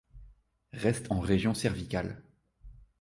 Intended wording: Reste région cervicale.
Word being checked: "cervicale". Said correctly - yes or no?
yes